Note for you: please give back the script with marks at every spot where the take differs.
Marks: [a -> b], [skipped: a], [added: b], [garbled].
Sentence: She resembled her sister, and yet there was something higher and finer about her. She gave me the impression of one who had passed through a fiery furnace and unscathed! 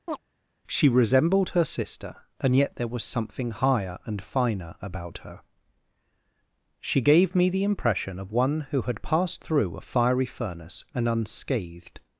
She resembled her sister, and yet there was something higher and finer about her. She gave me the impression of one who had passed through a fiery furnace and unscathed!